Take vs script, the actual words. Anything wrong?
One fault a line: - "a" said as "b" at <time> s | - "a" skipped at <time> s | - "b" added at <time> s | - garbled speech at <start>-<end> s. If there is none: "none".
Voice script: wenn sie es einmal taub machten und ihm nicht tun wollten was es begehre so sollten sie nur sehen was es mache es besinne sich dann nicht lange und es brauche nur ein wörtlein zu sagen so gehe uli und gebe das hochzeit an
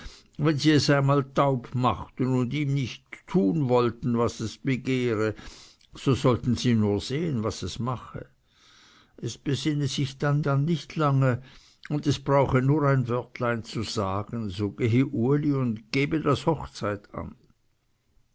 - "dann" added at 10.4 s